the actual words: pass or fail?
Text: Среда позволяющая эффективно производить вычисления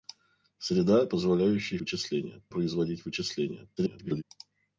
fail